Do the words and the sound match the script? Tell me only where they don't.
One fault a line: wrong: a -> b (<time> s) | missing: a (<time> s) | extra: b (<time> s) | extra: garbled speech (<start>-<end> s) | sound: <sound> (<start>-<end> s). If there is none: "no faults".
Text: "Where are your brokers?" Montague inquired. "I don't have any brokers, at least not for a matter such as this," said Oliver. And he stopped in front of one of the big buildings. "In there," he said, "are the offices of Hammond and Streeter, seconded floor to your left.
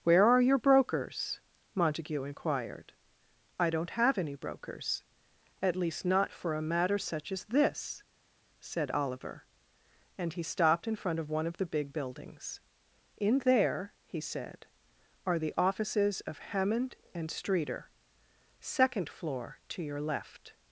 wrong: seconded -> second (18.6 s)